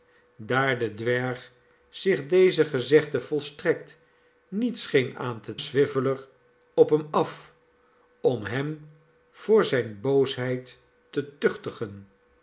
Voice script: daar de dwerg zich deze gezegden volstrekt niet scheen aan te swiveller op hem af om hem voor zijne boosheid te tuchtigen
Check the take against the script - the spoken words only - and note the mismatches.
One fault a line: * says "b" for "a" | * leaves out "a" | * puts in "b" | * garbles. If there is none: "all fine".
all fine